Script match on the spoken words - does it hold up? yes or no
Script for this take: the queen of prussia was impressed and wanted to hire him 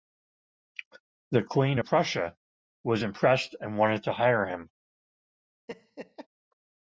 yes